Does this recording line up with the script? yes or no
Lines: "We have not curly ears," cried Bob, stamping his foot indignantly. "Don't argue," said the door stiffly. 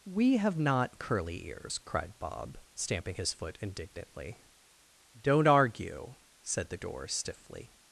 yes